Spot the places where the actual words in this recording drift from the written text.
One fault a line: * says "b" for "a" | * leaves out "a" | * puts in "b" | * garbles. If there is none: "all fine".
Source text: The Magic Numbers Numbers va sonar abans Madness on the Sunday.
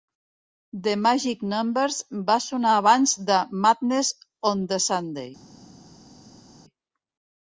* leaves out "Numbers"
* puts in "de"